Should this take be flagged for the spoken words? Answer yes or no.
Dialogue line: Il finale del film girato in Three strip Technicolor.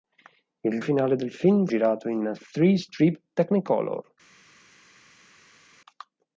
no